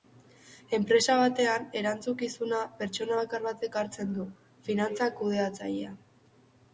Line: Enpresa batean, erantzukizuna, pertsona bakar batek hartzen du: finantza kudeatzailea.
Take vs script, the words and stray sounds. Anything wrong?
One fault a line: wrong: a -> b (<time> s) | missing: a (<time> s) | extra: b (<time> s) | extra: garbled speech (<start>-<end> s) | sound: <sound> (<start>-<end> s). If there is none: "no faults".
no faults